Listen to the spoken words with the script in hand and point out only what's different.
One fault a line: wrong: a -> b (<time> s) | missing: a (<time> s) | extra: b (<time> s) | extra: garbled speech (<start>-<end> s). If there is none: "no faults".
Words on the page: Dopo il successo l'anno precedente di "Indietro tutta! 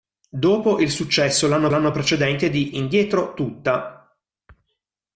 extra: l'anno (1.7 s)